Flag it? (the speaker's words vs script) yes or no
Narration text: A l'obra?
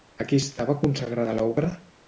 yes